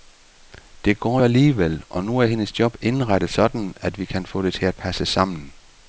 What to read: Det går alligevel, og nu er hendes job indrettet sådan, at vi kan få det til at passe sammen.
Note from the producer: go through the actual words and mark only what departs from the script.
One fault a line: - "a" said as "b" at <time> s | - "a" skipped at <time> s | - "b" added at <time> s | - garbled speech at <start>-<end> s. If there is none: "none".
none